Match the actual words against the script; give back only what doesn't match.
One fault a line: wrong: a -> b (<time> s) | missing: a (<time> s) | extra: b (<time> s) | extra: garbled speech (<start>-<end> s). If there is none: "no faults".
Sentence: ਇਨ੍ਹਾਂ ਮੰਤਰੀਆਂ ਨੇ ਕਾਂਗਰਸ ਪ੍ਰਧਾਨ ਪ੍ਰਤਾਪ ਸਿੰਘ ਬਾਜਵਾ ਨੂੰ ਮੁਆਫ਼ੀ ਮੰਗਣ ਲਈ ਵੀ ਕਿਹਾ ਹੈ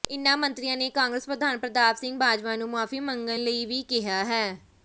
no faults